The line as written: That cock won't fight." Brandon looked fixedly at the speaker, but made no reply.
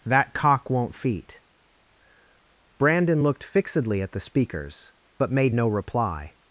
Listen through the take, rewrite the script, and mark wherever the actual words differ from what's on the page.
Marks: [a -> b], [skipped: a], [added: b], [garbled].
That cock won't [fight." -> feet] Brandon looked fixedly at the [speaker, -> speakers] but made no reply.